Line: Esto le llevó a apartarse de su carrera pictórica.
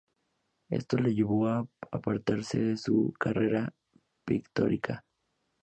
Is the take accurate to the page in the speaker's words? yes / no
yes